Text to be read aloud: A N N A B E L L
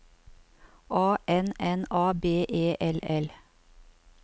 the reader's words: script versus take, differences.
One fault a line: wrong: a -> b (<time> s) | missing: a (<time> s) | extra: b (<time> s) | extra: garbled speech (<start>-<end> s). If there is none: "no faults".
no faults